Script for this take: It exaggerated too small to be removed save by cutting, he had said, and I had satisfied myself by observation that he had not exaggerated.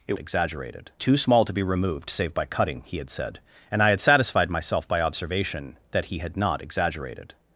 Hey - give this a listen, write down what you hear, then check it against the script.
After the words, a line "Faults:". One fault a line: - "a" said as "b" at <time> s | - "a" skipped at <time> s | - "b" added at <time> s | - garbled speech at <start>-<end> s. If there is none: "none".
It exaggerated too small to be removed save by cutting, he had said, and I had satisfied myself by observation that he had not exaggerated.
Faults:
none